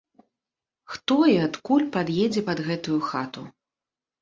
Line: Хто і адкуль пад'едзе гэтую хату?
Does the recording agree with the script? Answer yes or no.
no